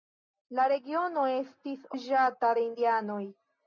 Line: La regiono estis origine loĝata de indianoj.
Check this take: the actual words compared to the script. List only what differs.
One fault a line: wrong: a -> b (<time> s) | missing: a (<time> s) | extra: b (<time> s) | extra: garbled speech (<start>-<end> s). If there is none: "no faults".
missing: origine (1.9 s)